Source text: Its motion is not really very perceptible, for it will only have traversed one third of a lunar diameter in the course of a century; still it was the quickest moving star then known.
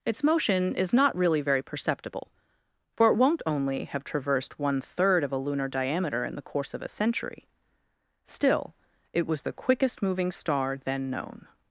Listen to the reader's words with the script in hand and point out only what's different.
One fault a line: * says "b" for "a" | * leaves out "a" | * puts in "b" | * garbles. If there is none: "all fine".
* says "won't" for "will"